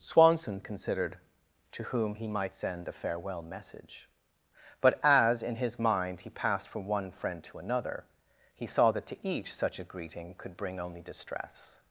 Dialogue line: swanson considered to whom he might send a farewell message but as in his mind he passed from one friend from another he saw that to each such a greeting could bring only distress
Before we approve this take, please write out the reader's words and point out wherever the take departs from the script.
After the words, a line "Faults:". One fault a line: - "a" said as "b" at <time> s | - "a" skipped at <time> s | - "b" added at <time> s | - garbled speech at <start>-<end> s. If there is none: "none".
swanson considered to whom he might send a farewell message but as in his mind he passed from one friend to another he saw that to each such a greeting could bring only distress
Faults:
- "from" said as "to" at 7.4 s